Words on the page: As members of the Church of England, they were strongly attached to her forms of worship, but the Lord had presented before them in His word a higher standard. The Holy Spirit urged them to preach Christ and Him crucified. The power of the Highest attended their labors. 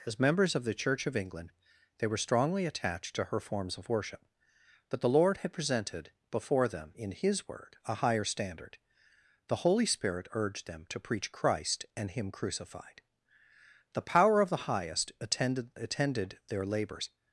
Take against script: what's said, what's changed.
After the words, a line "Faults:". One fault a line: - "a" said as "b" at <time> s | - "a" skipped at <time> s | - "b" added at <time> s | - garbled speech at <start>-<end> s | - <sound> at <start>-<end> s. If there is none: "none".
As members of the Church of England, they were strongly attached to her forms of worship, but the Lord had presented before them in His word a higher standard. The Holy Spirit urged them to preach Christ and Him crucified. The power of the Highest attended attended their labors.
Faults:
- "attended" added at 15.7 s